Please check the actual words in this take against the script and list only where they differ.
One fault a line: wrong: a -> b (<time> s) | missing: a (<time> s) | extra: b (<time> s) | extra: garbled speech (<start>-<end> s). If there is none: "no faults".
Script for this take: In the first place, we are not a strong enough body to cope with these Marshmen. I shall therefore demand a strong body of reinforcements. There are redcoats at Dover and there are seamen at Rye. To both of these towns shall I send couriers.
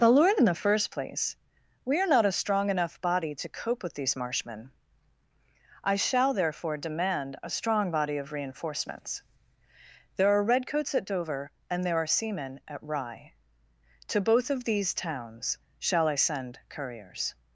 extra: the lord (0.0 s)